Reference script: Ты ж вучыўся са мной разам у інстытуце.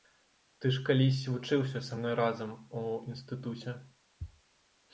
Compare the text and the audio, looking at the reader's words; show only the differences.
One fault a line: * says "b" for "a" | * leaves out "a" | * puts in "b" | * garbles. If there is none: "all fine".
* puts in "калісь"